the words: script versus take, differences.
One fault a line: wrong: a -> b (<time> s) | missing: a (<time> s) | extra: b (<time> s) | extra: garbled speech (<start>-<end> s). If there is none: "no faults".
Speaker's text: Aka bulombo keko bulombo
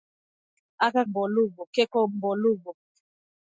no faults